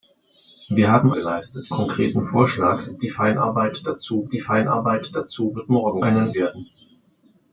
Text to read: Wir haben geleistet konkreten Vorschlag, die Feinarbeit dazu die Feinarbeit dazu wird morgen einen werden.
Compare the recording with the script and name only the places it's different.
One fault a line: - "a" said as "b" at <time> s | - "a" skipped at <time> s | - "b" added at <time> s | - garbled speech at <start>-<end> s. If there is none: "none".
none